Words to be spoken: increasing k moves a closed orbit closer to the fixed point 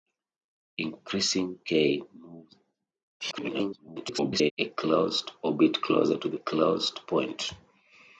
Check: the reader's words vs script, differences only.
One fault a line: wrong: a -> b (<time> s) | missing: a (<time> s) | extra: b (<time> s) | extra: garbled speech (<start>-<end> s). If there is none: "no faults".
extra: garbled speech (3.2-4.5 s)
wrong: fixed -> closed (6.3 s)